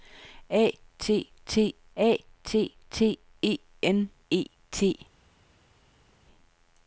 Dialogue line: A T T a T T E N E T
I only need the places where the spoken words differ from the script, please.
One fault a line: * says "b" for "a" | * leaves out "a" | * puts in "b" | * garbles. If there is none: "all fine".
all fine